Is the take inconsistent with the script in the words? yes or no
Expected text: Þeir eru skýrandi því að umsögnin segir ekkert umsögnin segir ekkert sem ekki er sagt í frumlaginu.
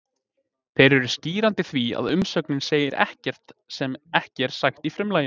yes